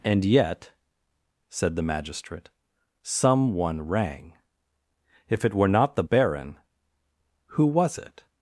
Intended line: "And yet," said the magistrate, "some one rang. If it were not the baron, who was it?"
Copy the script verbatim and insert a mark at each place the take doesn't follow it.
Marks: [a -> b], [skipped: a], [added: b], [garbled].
"And yet," said the magistrate, "some one rang. If it were not the baron, who was it?"